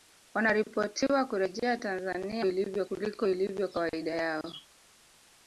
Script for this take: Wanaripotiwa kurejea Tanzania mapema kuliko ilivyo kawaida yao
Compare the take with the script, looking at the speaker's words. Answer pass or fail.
fail